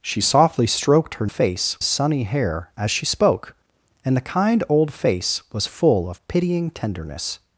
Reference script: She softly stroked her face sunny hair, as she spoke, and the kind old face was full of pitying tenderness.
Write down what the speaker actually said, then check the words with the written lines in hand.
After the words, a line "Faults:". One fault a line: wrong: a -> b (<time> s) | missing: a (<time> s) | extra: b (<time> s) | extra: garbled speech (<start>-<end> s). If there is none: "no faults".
She softly stroked her face sunny hair, as she spoke, and the kind old face was full of pitying tenderness.
Faults:
no faults